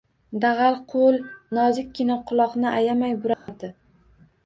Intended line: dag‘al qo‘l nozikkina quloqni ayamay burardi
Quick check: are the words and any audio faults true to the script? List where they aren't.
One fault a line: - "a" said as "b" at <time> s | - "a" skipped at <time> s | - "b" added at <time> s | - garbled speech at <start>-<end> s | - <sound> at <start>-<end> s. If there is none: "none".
- dropout at 3.3-3.5 s